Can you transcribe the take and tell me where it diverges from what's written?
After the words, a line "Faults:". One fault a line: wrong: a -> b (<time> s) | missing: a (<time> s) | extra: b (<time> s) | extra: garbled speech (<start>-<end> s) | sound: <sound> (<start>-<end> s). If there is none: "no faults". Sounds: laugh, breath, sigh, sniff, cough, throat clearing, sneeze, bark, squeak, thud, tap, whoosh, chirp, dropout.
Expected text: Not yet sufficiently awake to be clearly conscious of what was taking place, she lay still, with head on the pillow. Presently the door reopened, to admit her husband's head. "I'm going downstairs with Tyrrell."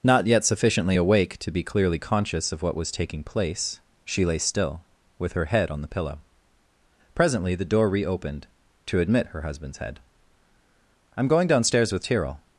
Not yet sufficiently awake to be clearly conscious of what was taking place, she lay still, with her head on the pillow. Presently the door reopened, to admit her husband's head. "I'm going downstairs with Tyrrell."
Faults:
extra: her (5.3 s)